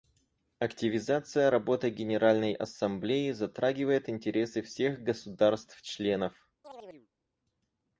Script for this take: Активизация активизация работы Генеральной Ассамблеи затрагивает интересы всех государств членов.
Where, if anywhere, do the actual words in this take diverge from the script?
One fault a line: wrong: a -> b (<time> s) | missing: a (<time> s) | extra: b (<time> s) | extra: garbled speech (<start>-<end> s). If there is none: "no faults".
missing: активизация (1.5 s)